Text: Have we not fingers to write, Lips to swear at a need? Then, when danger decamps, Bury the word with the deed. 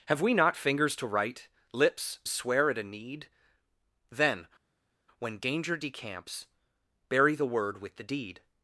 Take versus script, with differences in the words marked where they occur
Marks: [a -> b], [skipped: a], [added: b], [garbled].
Have we not fingers to write, Lips [skipped: to] swear at a need? Then, when danger decamps, Bury the word with the deed.